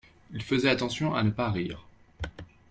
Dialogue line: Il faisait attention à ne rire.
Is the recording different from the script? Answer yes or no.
yes